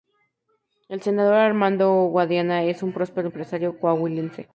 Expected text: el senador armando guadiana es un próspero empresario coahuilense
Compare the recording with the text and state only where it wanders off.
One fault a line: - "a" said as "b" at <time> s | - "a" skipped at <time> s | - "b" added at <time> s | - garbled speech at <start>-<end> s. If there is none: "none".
none